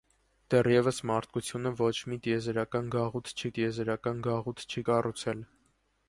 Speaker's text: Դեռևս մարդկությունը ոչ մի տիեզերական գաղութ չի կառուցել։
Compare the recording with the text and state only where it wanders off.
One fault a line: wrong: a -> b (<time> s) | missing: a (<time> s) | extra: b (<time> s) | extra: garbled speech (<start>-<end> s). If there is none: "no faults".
extra: տիեզերական գաղութ չի (3.6 s)